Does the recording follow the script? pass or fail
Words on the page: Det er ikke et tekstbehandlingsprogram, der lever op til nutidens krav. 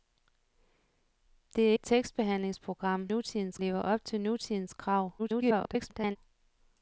fail